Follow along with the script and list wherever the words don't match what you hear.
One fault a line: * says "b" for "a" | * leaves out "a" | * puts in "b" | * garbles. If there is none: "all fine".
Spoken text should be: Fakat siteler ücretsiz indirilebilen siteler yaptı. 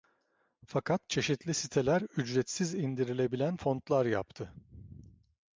* puts in "çeşitli"
* says "fontlar" for "siteler"